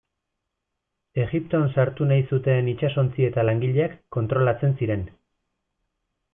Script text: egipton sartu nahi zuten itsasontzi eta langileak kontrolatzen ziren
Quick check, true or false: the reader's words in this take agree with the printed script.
true